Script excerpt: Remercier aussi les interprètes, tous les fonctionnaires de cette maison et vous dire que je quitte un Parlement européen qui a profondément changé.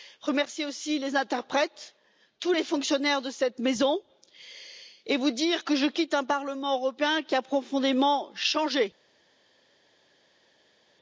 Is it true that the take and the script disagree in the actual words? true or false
false